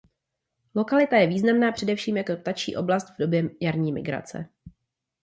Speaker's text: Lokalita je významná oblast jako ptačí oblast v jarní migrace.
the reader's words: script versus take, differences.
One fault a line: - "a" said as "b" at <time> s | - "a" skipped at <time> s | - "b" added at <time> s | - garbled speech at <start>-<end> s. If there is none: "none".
- "oblast" said as "především" at 1.7 s
- "době" added at 3.2 s